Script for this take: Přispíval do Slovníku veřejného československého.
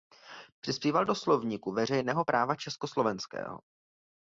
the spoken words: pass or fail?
fail